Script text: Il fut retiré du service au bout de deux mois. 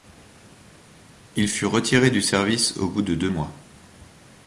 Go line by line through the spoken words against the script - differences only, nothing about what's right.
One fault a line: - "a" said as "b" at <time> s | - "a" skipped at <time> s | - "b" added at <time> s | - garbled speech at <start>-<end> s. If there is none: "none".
none